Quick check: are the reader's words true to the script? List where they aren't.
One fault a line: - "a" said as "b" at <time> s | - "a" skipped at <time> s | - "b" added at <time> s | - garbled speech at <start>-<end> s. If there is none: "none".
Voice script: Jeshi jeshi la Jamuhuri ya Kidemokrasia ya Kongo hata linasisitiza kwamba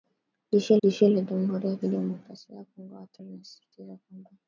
none